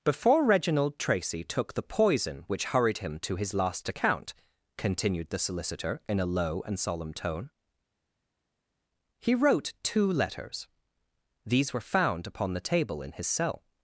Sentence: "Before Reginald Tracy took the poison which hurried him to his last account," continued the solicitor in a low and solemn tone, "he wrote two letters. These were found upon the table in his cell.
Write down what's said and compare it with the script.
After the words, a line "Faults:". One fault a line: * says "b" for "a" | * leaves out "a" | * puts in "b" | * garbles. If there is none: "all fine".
"Before Reginald Tracy took the poison which hurried him to his last account," continued the solicitor in a low and solemn tone, "he wrote two letters. These were found upon the table in his cell.
Faults:
all fine